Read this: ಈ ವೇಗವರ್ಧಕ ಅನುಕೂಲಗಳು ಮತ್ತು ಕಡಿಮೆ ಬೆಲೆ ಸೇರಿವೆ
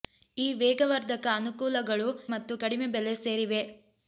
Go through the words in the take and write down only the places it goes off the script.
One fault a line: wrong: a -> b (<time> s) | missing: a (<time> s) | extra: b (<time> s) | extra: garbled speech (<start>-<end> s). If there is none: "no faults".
no faults